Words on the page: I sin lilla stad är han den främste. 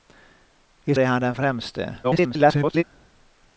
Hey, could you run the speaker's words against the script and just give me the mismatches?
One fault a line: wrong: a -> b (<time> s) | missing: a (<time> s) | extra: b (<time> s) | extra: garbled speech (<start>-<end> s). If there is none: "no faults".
missing: sin lilla stad (0.9 s)
extra: garbled speech (2.0-2.8 s)